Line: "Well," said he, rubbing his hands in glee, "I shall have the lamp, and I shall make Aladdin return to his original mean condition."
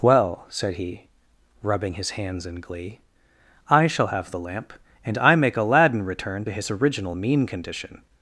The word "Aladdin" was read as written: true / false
true